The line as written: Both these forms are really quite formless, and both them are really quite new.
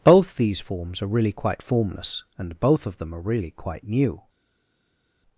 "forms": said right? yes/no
yes